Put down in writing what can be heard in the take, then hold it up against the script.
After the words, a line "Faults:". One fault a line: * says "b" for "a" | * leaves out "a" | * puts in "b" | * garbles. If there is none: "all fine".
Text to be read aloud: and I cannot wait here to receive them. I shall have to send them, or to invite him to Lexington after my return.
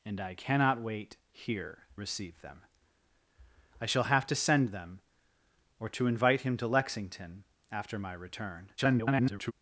and I cannot wait here receive them. I shall have to send them, or to invite him to Lexington after my return. [garbled]
Faults:
* leaves out "to"
* garbles